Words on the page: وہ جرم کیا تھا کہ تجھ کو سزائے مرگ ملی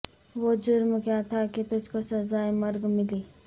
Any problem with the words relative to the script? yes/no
no